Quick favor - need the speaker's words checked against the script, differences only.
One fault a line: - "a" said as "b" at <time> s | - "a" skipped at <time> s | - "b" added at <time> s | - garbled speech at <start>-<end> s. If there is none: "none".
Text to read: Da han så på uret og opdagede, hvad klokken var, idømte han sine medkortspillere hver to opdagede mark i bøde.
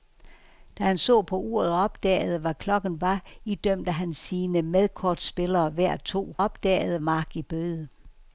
none